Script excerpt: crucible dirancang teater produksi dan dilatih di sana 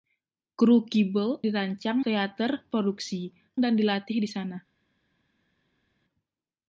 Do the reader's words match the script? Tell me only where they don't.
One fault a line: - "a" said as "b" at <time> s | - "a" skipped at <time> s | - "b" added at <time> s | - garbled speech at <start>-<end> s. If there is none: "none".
none